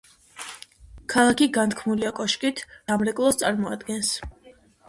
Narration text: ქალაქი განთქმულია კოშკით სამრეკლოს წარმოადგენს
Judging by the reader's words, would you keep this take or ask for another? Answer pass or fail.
pass